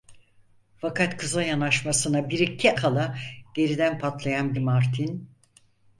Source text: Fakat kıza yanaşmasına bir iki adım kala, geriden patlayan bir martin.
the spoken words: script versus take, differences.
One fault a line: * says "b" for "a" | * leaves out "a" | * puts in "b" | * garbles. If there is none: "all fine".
* leaves out "adım"
* leaves out "bir"